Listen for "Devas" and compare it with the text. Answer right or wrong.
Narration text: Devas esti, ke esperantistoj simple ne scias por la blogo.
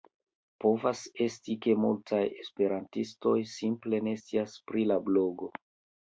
wrong